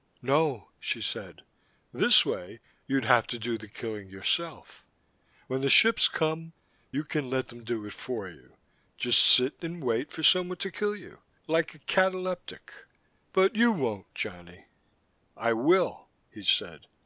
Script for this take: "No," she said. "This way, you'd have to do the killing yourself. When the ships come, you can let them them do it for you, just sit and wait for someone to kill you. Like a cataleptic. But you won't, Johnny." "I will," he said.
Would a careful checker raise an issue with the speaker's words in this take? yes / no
yes